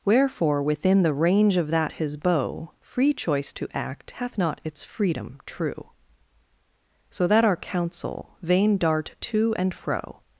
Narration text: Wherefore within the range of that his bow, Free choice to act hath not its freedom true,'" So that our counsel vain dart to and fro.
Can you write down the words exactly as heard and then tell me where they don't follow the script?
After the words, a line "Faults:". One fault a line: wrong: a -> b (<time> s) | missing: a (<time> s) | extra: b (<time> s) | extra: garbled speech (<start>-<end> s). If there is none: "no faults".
Wherefore within the range of that his bow, Free choice to act hath not its freedom true,'" So that our counsel vain dart to and fro.
Faults:
no faults